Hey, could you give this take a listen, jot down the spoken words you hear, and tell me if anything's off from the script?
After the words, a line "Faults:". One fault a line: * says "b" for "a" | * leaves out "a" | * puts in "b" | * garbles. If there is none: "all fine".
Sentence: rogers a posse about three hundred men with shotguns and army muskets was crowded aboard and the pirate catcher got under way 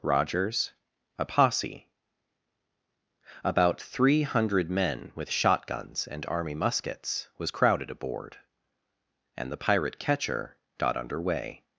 rogers a posse about three hundred men with shotguns and army muskets was crowded aboard and the pirate catcher got under way
Faults:
all fine